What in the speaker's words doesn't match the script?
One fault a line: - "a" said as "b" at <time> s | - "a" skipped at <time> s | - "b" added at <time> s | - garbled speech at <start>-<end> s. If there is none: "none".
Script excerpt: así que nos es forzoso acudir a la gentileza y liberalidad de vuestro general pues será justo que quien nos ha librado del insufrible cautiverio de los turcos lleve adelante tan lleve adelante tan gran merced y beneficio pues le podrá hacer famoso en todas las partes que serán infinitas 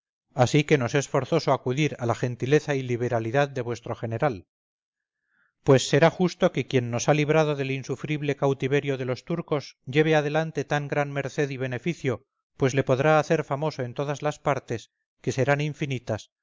- "lleve adelante tan" skipped at 10.9 s